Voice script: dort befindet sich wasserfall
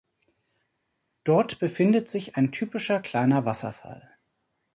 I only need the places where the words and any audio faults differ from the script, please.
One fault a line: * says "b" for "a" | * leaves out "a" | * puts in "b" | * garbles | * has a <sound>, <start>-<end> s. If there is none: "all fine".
* puts in "ein typischer kleiner"